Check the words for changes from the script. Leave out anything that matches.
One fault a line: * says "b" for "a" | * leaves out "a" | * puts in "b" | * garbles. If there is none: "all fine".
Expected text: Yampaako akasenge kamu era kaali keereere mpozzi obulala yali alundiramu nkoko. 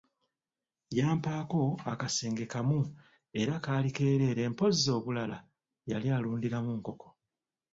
all fine